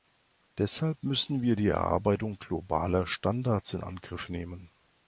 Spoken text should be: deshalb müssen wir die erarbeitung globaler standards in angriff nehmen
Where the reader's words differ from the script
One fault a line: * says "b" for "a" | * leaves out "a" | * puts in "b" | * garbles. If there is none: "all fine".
all fine